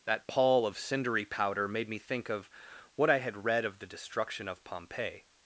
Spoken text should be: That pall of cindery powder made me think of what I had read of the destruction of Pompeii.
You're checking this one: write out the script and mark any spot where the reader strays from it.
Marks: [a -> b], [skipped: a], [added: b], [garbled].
That pall of cindery powder made me think of what I had read of the destruction of Pompeii.